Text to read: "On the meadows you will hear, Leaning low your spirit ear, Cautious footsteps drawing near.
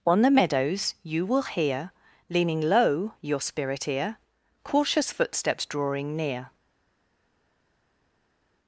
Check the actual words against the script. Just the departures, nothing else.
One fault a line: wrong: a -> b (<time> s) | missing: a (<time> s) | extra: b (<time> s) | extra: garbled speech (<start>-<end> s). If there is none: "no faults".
no faults